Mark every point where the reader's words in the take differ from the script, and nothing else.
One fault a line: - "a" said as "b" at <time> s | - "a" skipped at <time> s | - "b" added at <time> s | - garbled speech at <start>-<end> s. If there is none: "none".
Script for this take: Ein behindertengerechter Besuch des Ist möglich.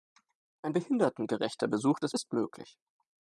none